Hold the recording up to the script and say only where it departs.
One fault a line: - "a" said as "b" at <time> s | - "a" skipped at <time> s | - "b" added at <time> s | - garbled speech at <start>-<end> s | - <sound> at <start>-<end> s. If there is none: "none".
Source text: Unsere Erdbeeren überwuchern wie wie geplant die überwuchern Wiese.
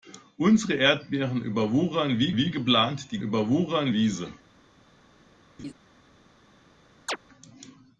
- laugh at 5.6-5.7 s
- chirp at 7.1-7.2 s